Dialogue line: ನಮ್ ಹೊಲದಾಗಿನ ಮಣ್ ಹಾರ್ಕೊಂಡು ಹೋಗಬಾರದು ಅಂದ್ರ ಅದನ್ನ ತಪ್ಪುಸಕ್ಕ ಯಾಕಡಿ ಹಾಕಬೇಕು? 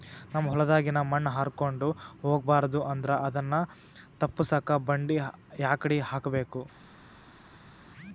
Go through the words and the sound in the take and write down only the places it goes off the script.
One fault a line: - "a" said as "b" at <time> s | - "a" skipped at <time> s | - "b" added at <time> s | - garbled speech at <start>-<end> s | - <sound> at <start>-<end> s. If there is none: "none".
- "ಬಂಡಿ" added at 4.9 s